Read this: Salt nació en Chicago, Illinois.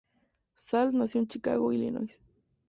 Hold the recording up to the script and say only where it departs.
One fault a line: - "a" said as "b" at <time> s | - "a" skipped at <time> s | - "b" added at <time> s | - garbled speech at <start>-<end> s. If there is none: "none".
none